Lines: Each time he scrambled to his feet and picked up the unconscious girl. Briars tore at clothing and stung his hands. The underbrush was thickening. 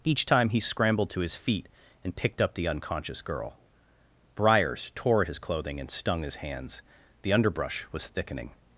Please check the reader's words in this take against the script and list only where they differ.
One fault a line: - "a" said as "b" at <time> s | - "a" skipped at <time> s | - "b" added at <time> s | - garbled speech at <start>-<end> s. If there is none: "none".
- "his" added at 5.2 s